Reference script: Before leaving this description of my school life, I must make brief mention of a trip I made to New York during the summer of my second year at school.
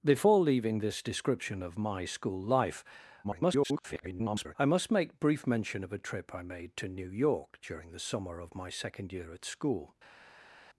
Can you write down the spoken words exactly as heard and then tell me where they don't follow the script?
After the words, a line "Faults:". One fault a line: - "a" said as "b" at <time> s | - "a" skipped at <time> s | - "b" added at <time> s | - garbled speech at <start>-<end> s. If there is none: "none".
Before leaving this description of my school life, [garbled] I must make brief mention of a trip I made to New York during the summer of my second year at school.
Faults:
- garbled speech at 3.2-4.6 s